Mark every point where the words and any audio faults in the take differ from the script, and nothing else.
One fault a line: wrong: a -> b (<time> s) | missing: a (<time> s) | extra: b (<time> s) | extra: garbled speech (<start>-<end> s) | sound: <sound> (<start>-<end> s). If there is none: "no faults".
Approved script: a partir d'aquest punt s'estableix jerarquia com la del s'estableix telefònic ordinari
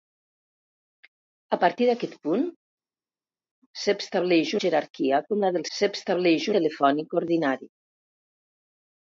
no faults